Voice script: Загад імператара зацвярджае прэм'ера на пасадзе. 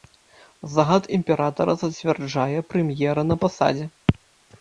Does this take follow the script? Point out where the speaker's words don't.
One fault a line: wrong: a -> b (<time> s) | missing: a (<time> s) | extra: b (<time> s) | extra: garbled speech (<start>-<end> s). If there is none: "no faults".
no faults